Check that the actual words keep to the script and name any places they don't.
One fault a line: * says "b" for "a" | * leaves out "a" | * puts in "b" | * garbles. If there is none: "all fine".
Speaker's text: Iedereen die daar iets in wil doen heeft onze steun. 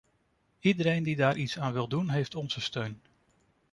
* says "aan" for "in"